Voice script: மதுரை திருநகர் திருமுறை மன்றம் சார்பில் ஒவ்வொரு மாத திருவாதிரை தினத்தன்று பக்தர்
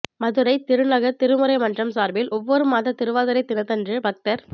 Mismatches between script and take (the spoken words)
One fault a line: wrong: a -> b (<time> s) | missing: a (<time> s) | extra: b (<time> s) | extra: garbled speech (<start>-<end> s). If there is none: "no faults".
no faults